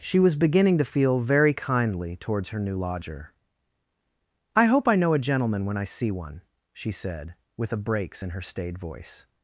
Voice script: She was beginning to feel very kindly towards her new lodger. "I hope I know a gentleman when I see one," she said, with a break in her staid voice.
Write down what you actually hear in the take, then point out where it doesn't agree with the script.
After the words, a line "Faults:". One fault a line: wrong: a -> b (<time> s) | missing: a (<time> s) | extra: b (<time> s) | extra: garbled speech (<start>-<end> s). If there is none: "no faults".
She was beginning to feel very kindly towards her new lodger. "I hope I know a gentleman when I see one," she said, with a breaks in her staid voice.
Faults:
wrong: break -> breaks (7.8 s)